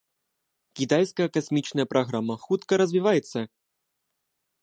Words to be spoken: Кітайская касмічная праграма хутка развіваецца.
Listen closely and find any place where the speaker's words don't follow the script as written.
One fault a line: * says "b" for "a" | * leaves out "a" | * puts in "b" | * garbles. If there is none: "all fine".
all fine